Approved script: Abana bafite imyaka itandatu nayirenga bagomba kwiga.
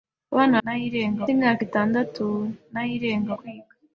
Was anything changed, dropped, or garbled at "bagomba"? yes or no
yes